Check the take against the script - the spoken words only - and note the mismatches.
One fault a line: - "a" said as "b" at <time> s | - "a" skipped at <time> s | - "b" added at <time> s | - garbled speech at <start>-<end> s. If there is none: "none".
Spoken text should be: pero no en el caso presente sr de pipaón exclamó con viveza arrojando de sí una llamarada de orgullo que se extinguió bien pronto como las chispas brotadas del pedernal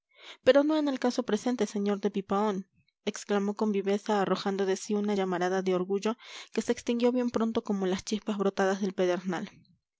none